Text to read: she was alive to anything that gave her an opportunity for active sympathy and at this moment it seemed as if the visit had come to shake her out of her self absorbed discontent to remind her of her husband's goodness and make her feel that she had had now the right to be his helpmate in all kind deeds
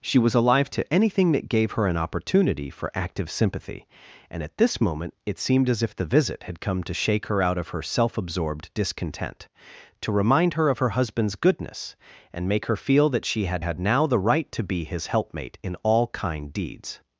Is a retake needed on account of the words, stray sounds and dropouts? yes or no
no